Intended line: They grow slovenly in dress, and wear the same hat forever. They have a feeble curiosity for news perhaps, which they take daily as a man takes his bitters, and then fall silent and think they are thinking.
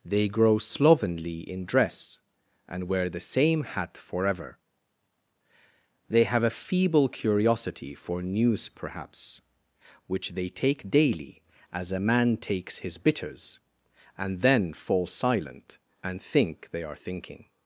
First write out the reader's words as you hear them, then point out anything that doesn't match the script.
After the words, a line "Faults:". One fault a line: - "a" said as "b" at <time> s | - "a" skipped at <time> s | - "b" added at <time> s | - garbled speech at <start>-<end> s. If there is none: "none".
They grow slovenly in dress, and wear the same hat forever. They have a feeble curiosity for news perhaps, which they take daily as a man takes his bitters, and then fall silent and think they are thinking.
Faults:
none